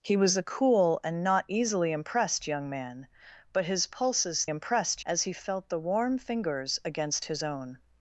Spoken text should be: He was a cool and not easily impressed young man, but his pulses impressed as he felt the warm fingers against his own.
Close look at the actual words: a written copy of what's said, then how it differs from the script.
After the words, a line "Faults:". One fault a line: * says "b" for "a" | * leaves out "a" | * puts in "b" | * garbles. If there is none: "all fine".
He was a cool and not easily impressed young man, but his pulses impressed as he felt the warm fingers against his own.
Faults:
all fine